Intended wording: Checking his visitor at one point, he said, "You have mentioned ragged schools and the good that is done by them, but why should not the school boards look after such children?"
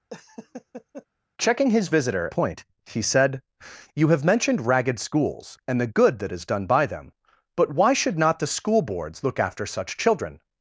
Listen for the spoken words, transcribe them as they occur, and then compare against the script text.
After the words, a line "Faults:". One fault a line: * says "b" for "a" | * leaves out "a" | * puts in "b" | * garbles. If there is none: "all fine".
Checking his visitor point, he said, "You have mentioned ragged schools and the good that is done by them, but why should not the school boards look after such children?"
Faults:
* leaves out "at one"